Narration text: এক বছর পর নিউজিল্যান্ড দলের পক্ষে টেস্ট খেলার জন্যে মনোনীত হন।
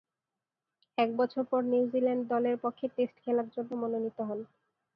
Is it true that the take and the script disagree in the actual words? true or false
false